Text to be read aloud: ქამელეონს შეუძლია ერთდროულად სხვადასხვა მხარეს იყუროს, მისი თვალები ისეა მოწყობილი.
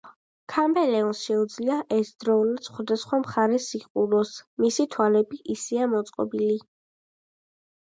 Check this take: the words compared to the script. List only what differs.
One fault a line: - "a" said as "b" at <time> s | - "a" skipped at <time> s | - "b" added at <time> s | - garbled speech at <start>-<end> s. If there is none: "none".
none